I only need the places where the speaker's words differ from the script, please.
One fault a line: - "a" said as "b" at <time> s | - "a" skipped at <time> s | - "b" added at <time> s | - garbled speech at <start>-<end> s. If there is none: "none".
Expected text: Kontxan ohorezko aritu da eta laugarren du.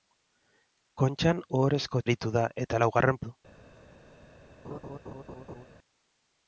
none